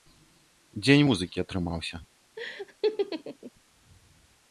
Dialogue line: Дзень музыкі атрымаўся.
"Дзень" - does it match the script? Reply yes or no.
yes